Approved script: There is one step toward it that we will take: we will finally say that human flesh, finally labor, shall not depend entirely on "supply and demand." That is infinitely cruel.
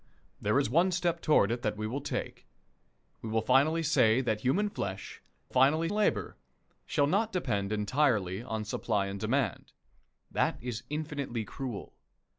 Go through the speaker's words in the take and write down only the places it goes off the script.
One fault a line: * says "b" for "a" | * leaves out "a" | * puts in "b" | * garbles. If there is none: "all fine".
all fine